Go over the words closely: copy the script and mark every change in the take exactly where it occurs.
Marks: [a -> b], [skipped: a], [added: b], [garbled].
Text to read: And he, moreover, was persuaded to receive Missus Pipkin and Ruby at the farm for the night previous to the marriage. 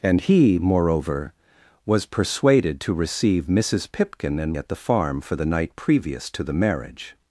And he, moreover, was persuaded to receive Missus Pipkin and [skipped: Ruby] at the farm for the night previous to the marriage.